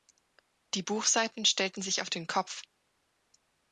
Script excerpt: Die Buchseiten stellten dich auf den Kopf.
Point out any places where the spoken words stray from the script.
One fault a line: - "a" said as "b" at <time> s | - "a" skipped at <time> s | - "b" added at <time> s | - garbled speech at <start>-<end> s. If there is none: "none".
- "dich" said as "sich" at 1.8 s